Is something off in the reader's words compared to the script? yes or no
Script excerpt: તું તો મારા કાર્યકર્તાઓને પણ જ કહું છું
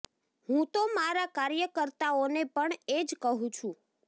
yes